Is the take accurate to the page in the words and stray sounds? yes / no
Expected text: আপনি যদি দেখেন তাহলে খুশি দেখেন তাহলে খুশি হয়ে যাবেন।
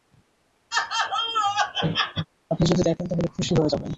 no